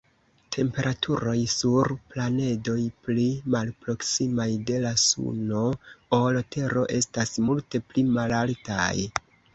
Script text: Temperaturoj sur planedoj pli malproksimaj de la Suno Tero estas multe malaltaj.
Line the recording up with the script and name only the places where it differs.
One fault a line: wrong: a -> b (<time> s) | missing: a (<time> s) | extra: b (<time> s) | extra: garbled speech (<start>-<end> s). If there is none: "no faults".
extra: ol (6.2 s)
extra: pli (7.9 s)